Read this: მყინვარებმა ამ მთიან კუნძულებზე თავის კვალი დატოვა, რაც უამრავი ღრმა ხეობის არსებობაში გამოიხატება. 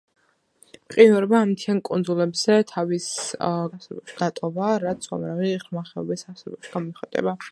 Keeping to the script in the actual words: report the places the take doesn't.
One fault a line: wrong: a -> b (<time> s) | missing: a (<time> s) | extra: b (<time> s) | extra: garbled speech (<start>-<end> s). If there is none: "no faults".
wrong: კვალი -> არსებობაში (3.8 s)